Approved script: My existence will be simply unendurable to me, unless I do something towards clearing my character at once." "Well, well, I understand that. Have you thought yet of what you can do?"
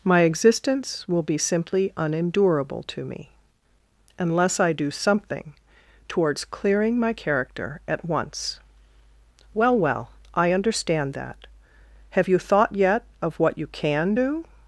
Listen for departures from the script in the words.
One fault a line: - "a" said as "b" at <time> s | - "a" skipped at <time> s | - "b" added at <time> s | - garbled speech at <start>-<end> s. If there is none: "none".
none